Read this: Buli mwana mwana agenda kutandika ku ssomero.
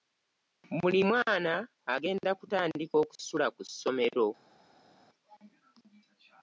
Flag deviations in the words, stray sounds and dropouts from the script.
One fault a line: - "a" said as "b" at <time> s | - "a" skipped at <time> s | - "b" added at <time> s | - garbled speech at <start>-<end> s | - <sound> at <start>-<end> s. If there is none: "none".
- "mwana" skipped at 1.5 s
- "okusula" added at 3.0 s